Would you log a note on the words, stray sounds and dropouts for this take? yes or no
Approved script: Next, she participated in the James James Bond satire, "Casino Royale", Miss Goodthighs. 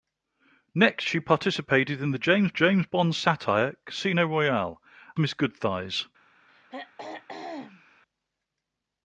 yes